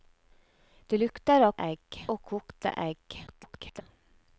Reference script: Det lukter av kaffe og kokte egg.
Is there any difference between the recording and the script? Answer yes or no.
yes